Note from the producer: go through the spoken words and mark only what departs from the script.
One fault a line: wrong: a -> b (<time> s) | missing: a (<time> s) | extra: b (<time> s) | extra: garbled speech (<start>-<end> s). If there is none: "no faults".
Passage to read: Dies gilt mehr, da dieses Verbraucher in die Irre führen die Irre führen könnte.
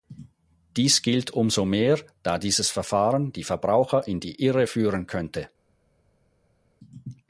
extra: umso (1.3 s)
wrong: Verbraucher in -> Verfahren (2.7 s)
wrong: Irre führen -> Verbraucher in (3.4 s)